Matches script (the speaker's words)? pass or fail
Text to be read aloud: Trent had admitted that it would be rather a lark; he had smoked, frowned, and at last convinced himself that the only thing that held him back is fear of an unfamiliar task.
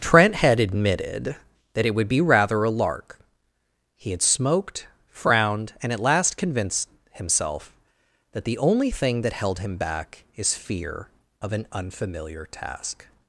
pass